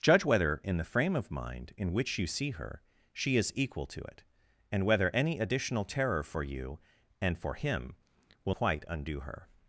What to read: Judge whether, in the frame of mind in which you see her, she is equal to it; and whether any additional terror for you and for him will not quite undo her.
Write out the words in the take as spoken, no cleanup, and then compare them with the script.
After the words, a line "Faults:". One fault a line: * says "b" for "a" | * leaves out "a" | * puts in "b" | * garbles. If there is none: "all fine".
Judge whether, in the frame of mind in which you see her, she is equal to it; and whether any additional terror for you and for him will quite undo her.
Faults:
* leaves out "not"